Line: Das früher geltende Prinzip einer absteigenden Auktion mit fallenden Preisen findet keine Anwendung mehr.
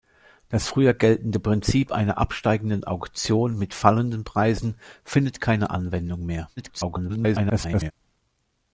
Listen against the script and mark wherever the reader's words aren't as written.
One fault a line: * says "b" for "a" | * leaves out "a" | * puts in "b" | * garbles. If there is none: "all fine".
* garbles